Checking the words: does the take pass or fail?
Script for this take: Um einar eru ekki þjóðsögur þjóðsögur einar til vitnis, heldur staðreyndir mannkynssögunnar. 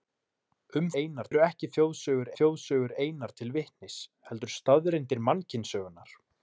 pass